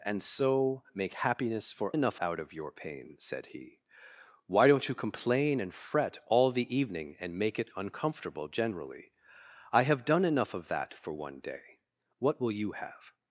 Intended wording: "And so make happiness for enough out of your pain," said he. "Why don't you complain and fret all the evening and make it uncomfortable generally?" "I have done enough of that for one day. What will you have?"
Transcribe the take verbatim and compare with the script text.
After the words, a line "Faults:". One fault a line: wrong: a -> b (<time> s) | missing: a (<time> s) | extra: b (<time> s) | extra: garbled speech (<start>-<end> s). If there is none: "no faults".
"And so make happiness for enough out of your pain," said he. "Why don't you complain and fret all the evening and make it uncomfortable generally?" "I have done enough of that for one day. What will you have?"
Faults:
no faults